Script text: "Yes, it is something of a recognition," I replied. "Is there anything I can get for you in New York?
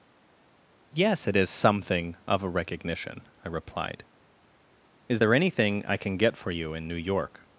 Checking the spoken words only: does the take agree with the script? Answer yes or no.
yes